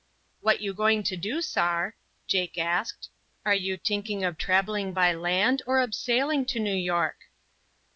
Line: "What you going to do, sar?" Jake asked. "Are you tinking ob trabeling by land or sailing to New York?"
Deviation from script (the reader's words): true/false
true